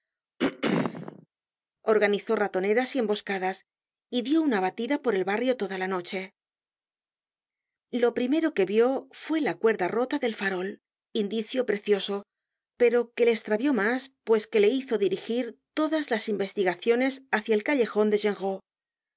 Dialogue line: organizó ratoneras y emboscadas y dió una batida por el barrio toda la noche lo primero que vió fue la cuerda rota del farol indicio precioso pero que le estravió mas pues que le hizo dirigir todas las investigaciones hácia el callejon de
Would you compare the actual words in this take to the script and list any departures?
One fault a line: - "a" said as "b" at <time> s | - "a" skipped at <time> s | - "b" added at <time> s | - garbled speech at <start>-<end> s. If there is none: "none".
none